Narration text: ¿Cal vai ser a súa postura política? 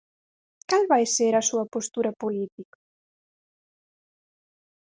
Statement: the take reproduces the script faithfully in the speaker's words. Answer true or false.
true